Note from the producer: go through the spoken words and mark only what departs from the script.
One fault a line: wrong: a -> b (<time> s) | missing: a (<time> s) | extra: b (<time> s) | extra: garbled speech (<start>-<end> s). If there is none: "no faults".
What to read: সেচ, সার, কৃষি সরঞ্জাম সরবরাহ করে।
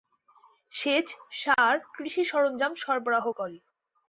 no faults